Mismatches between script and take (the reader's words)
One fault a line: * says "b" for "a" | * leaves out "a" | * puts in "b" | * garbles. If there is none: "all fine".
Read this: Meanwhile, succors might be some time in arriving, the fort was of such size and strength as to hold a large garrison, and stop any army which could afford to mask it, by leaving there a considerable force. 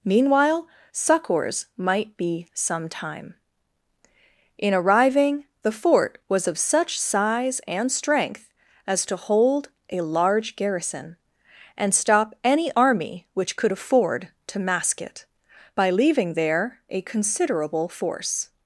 all fine